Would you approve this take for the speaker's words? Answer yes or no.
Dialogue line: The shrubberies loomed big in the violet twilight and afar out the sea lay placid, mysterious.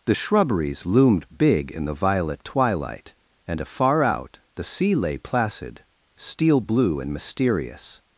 no